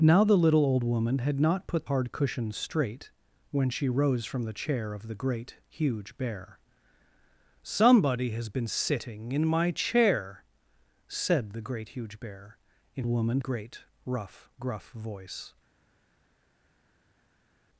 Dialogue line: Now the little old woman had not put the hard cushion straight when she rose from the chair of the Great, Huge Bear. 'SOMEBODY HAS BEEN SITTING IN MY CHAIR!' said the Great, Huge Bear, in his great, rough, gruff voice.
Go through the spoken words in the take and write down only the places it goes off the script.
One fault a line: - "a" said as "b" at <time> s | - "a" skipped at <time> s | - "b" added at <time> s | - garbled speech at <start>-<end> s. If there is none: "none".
- "the" skipped at 1.9 s
- "his" said as "woman" at 13.1 s